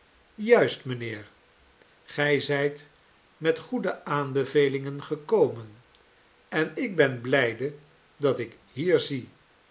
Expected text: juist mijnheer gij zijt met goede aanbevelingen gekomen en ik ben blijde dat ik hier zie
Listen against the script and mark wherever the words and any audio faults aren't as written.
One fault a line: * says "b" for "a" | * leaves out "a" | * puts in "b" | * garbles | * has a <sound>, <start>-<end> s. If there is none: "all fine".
all fine